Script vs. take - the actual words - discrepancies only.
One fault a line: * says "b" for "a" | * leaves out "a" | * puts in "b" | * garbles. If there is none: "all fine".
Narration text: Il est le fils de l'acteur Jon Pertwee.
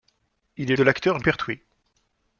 * leaves out "le fils"
* leaves out "Jon"